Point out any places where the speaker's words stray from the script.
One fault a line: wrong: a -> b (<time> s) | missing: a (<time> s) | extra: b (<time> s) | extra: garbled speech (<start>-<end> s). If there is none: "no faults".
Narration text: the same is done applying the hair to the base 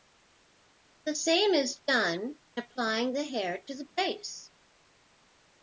no faults